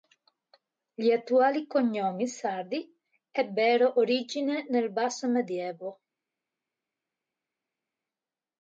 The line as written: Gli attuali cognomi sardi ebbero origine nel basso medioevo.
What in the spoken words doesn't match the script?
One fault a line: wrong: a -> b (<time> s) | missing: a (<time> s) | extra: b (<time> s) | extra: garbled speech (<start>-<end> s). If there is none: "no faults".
no faults